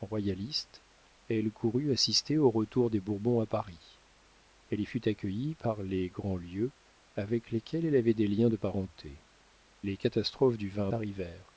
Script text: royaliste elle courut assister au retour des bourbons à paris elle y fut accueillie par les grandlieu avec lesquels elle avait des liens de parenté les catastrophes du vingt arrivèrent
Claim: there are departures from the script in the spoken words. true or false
false